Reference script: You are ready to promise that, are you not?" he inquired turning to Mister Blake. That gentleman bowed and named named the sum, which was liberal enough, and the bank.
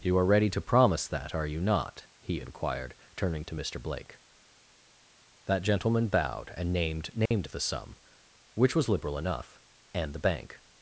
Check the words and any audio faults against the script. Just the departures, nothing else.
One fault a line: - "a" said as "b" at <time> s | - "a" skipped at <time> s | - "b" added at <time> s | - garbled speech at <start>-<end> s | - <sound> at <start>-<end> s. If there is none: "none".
- dropout at 7.3-7.3 s